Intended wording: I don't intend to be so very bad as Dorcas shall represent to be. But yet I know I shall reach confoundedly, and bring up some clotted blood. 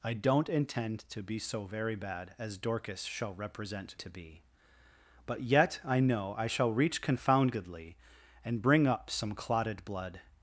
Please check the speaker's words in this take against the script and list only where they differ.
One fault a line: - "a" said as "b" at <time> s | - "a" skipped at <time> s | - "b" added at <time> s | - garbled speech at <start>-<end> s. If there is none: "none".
none